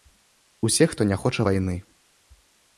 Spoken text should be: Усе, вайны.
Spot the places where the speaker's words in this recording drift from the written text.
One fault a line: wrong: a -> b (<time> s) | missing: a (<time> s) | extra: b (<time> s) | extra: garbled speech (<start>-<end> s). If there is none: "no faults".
extra: хто не хоча (0.9 s)